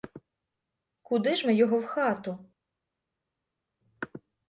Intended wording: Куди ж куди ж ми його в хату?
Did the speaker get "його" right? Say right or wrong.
right